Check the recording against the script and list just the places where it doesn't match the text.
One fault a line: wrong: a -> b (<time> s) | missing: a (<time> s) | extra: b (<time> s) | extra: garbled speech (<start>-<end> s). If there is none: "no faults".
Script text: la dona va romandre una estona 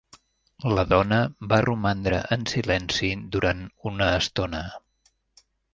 extra: en silenci durant (2.4 s)